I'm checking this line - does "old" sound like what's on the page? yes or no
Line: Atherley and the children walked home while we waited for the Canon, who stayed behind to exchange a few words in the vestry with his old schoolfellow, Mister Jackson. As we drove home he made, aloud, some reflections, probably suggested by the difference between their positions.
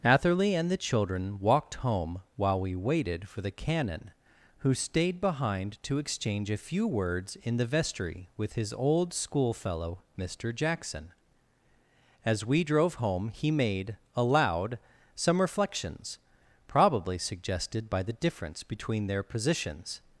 yes